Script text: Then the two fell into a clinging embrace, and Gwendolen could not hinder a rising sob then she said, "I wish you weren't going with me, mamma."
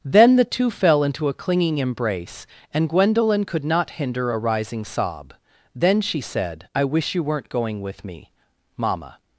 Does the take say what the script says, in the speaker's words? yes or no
yes